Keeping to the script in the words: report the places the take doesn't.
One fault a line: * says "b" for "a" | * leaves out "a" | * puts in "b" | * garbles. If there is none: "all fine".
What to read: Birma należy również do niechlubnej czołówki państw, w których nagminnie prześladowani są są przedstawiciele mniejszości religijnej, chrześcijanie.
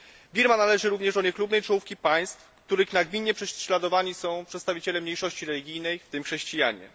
* leaves out "są"
* puts in "w tym"